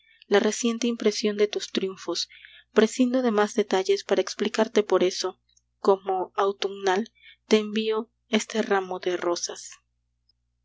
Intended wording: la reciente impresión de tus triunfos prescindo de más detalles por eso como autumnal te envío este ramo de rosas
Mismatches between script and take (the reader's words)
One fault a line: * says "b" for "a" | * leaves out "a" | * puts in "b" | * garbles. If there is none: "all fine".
* puts in "para explicarte"